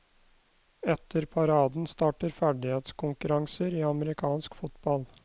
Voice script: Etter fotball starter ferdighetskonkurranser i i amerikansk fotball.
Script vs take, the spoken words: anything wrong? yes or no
yes